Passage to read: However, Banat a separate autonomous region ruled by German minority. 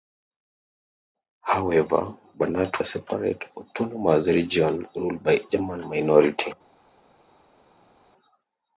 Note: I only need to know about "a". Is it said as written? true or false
true